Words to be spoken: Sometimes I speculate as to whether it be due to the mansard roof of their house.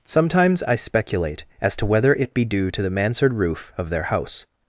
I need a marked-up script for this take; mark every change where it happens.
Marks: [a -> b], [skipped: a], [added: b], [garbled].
Sometimes I speculate as to whether it be due to the mansard roof of their house.